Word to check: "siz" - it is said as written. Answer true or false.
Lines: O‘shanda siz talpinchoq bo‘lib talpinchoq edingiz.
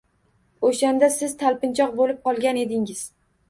true